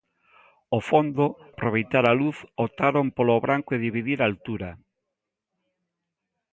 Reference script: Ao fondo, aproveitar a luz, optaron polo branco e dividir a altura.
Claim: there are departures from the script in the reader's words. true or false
false